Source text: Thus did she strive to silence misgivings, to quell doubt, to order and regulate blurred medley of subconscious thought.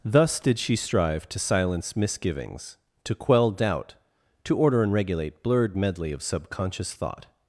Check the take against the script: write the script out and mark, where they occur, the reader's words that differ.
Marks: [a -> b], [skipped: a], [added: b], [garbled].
Thus did she strive to silence misgivings, to quell doubt, to order and regulate blurred medley of subconscious thought.